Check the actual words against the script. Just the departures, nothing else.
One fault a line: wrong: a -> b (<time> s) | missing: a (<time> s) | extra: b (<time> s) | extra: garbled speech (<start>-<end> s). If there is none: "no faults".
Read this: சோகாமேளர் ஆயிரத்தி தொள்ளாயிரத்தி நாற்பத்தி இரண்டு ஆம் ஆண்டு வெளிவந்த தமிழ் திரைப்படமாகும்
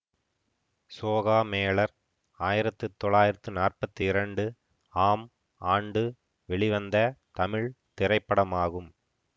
no faults